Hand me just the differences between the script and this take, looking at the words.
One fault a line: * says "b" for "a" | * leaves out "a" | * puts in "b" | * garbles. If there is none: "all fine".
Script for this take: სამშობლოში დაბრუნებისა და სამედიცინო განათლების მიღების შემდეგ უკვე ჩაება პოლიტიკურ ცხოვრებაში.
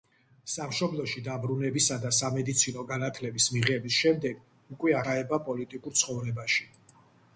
all fine